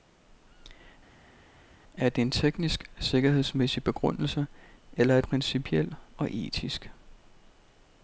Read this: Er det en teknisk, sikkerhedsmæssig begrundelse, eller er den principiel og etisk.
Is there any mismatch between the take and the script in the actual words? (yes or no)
yes